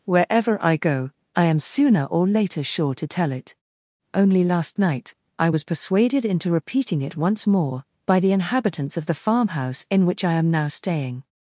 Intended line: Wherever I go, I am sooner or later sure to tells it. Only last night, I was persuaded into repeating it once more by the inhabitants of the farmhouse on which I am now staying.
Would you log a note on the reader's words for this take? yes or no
yes